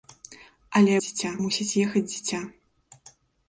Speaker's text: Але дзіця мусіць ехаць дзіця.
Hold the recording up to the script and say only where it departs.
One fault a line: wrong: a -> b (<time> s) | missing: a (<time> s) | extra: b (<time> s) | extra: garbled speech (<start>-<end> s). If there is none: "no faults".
no faults